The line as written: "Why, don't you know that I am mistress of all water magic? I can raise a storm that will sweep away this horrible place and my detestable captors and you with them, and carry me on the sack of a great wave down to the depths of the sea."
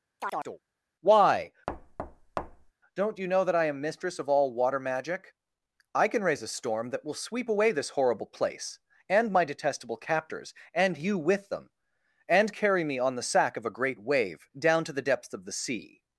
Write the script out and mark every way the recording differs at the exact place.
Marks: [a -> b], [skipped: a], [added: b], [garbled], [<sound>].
[chirp] "Why, [thud] don't you know that I am mistress of all water magic? I can raise a storm that will sweep away this horrible place and my detestable captors and you with them, and carry me on the sack of a great wave down to the depths of the sea."